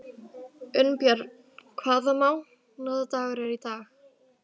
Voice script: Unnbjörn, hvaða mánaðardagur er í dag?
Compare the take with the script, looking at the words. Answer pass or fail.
pass